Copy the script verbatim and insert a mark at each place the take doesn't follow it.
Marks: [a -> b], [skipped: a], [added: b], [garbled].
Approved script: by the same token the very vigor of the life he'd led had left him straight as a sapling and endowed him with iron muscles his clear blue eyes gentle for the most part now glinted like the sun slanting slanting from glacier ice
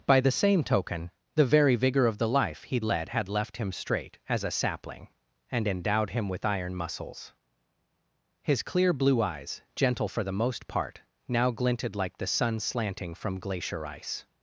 by the same token the very vigor of the life he'd led had left him straight as a sapling and endowed him with iron muscles his clear blue eyes gentle for the most part now glinted like the sun slanting [skipped: slanting] from glacier ice